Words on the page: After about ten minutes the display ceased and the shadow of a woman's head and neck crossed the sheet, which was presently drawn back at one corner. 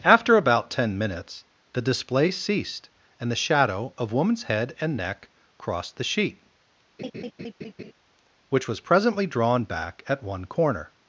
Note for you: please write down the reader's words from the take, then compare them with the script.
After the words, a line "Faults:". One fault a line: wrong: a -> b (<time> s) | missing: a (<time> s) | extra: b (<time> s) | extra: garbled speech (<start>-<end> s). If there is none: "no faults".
After about ten minutes the display ceased and the shadow of woman's head and neck crossed the sheet, which was presently drawn back at one corner.
Faults:
missing: a (4.1 s)